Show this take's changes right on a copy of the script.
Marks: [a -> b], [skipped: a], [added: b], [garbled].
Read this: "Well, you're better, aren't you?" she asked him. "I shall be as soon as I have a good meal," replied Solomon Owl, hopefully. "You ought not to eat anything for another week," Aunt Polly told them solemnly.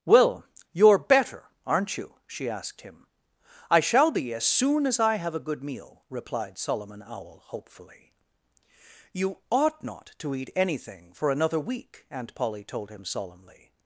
"Well, you're better, aren't you?" she asked him. "I shall be as soon as I have a good meal," replied Solomon Owl, hopefully. "You ought not to eat anything for another week," Aunt Polly told [them -> him] solemnly.